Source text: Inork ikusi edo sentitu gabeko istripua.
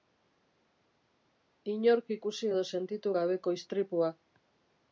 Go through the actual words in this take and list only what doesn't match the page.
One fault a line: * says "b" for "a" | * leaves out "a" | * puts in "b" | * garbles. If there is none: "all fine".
all fine